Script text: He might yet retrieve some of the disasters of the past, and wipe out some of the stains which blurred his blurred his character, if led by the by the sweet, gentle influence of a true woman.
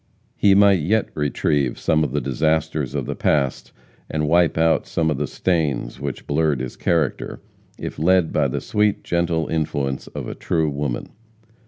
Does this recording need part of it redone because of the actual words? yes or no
yes